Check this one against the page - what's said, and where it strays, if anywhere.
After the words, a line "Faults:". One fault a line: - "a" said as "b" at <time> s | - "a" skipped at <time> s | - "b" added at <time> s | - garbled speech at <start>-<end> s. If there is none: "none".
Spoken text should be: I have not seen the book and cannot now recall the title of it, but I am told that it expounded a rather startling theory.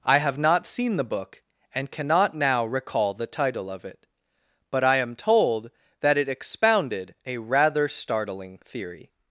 I have not seen the book and cannot now recall the title of it, but I am told that it expounded a rather startling theory.
Faults:
none